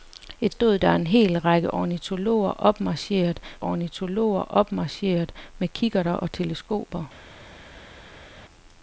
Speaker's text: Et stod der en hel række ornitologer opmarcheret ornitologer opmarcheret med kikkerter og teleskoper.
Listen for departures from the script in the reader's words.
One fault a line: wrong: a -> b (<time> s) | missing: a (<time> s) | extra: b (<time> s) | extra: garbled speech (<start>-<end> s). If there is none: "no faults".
no faults